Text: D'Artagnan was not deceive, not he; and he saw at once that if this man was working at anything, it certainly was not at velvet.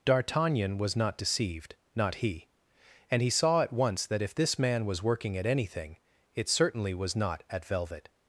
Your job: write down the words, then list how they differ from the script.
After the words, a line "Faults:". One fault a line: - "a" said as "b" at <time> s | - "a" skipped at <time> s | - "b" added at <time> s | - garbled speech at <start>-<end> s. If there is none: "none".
D'Artagnan was not deceived, not he; and he saw at once that if this man was working at anything, it certainly was not at velvet.
Faults:
- "deceive" said as "deceived" at 1.2 s